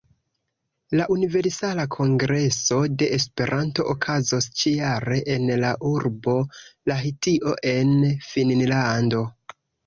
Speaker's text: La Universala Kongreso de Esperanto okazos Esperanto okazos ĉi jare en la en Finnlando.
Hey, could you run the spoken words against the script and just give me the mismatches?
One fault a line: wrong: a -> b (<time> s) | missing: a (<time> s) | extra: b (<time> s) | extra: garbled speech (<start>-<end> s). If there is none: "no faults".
missing: Esperanto okazos (4.5 s)
extra: urbo Lahtio (5.9 s)